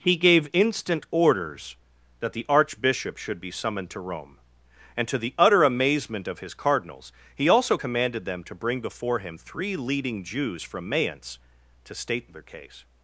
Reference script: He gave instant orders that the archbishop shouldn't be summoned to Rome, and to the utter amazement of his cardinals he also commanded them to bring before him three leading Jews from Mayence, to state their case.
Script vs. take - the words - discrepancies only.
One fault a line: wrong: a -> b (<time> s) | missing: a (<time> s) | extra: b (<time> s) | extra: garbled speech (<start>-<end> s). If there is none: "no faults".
wrong: shouldn't -> should (3.2 s)